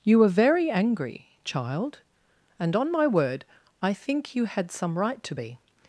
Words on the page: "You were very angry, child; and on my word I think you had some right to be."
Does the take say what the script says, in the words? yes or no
yes